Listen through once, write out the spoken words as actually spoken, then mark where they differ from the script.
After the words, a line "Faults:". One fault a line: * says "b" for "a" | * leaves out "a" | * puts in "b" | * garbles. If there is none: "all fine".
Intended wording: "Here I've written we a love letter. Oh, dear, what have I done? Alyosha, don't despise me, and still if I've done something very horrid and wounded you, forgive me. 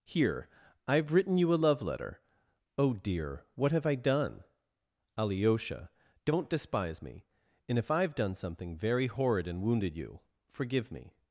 "Here I've written you a love letter. Oh, dear, what have I done? Alyosha, don't despise me, and if I've done something very horrid and wounded you, forgive me.
Faults:
* says "you" for "we"
* leaves out "still"